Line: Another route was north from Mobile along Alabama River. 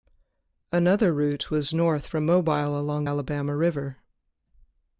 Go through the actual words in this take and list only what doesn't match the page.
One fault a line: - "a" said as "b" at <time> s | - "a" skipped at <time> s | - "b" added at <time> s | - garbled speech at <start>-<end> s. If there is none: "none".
none